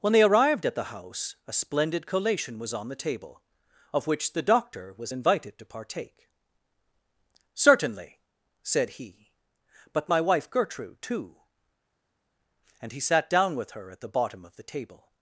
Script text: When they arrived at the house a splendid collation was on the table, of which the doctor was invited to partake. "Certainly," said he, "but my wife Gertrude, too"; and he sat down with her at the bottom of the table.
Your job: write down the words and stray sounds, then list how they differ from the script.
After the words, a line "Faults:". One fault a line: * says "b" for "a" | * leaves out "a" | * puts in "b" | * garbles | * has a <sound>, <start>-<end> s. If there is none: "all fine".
When they arrived at the house a splendid collation was on the table, of which the doctor was invited to partake. "Certainly," said he, "but my wife Gertrude, too"; and he sat down with her at the bottom of the table.
Faults:
all fine